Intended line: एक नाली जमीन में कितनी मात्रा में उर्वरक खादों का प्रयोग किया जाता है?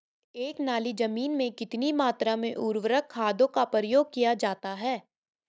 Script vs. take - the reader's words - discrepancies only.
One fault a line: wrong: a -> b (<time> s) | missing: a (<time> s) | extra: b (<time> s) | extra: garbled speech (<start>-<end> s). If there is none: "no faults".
no faults